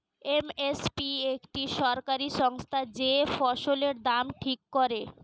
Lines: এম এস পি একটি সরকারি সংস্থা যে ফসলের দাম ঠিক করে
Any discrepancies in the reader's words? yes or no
no